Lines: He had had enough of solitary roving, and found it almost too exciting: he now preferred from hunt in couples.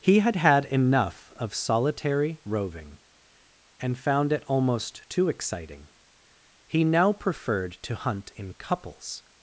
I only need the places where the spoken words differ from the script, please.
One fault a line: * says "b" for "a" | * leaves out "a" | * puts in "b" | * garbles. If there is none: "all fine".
* says "to" for "from"